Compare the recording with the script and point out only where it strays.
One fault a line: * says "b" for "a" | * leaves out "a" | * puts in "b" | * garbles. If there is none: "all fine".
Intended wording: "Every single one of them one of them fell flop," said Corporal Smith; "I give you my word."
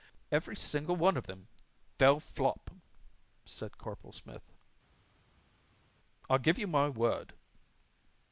* leaves out "one of them"